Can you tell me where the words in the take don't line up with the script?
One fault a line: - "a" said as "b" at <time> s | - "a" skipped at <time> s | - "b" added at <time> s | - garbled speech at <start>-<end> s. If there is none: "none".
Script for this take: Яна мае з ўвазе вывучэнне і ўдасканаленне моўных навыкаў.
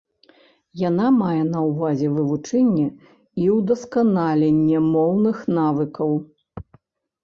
- "з" said as "на" at 1.5 s